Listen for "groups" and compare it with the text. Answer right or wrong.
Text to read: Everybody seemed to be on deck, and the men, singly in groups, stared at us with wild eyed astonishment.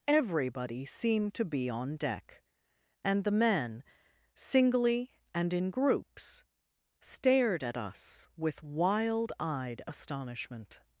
right